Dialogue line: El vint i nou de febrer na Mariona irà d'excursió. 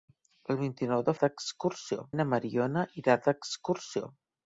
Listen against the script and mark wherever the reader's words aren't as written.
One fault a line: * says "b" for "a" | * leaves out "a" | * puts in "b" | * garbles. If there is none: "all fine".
* says "d'excursió" for "febrer"